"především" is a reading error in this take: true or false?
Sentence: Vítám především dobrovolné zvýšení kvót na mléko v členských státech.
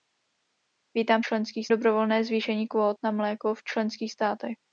true